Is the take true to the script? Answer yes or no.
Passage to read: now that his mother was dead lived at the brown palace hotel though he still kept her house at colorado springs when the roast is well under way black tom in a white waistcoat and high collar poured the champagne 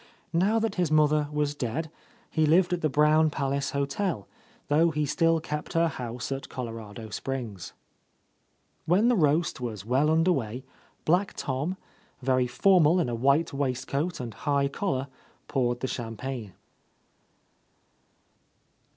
no